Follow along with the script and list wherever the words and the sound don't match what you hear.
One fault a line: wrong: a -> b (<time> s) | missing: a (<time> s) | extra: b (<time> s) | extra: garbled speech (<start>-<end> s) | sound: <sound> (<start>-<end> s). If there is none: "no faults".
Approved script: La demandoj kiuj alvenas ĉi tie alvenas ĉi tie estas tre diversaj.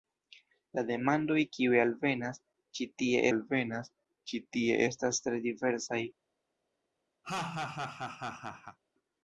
sound: laugh (7.2-8.8 s)